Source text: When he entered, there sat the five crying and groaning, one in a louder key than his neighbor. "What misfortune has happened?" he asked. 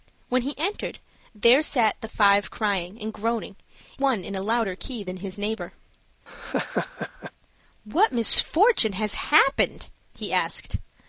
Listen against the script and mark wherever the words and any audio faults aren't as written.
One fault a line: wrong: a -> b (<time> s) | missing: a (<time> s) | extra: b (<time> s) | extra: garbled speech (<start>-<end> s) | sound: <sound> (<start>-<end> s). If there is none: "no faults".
sound: laugh (6.3-7.3 s)